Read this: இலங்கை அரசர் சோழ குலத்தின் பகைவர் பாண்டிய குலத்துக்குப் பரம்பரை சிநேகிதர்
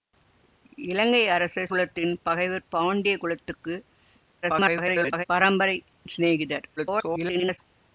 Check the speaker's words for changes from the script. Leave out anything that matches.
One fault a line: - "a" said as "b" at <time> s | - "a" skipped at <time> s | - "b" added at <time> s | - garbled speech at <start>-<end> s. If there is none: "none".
- "சோழ" skipped at 1.7 s
- garbled speech at 4.4-5.2 s
- garbled speech at 6.8-7.6 s